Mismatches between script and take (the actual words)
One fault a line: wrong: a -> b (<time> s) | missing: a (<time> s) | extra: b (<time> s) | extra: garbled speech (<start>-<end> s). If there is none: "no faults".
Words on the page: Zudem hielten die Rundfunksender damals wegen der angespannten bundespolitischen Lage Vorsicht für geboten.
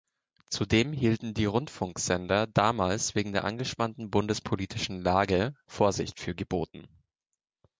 no faults